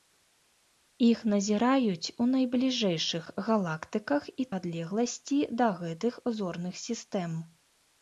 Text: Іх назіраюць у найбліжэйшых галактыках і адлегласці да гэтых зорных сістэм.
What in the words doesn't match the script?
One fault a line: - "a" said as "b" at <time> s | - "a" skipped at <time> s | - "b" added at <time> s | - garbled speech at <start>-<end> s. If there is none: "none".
none